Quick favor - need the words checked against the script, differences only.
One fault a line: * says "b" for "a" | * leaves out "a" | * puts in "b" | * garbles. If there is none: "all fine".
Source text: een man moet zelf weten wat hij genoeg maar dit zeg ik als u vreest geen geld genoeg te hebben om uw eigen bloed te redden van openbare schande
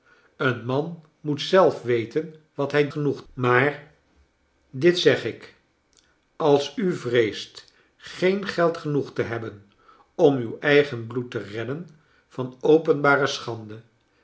all fine